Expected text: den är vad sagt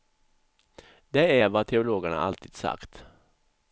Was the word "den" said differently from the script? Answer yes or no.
yes